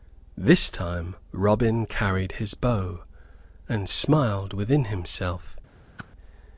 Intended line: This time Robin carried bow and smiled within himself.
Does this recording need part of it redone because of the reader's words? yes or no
yes